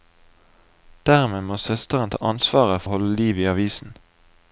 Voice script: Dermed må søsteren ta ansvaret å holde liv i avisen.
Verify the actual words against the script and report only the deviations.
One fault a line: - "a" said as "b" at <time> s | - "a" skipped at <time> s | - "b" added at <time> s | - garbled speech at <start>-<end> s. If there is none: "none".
none